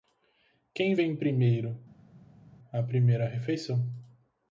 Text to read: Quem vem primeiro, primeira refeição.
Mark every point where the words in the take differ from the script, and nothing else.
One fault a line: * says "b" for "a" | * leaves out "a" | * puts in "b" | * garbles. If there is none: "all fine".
* puts in "a"